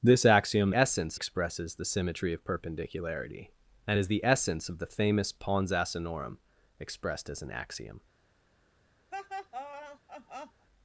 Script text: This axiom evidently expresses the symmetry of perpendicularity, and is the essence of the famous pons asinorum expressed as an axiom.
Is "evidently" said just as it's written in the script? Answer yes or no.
no